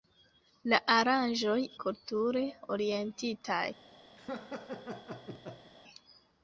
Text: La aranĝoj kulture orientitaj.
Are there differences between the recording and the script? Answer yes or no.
no